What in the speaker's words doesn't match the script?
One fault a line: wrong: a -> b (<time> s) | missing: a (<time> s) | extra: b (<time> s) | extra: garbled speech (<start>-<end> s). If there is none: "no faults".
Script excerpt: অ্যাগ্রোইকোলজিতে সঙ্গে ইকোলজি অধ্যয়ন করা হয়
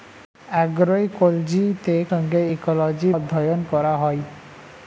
no faults